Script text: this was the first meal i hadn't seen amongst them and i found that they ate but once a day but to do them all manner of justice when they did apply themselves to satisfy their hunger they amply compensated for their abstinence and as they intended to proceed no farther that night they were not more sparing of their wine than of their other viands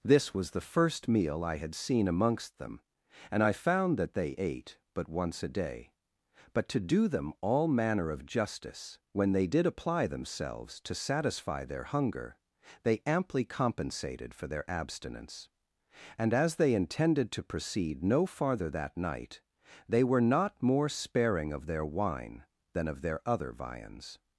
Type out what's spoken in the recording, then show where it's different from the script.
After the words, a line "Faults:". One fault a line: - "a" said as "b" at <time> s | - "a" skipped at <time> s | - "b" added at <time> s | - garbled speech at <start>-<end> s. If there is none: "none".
this was the first meal i had seen amongst them and i found that they ate but once a day but to do them all manner of justice when they did apply themselves to satisfy their hunger they amply compensated for their abstinence and as they intended to proceed no farther that night they were not more sparing of their wine than of their other viands
Faults:
- "hadn't" said as "had" at 1.6 s